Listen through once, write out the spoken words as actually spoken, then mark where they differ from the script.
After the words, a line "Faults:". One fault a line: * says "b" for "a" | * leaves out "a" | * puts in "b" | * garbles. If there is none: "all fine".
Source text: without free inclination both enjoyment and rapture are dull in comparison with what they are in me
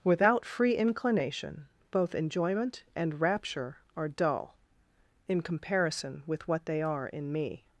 without free inclination both enjoyment and rapture are dull in comparison with what they are in me
Faults:
all fine